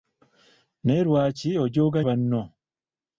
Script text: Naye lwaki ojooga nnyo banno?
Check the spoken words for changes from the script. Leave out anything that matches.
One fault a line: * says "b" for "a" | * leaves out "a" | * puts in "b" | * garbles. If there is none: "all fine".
* leaves out "nnyo"